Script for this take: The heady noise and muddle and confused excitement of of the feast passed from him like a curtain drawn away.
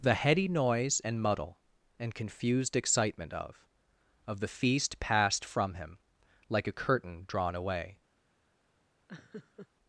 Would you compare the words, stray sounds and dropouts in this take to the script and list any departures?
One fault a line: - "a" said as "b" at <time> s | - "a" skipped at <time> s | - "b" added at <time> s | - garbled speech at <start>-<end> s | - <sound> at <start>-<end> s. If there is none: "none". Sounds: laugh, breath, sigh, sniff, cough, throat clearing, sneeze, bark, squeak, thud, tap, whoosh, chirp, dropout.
- laugh at 9.1-9.7 s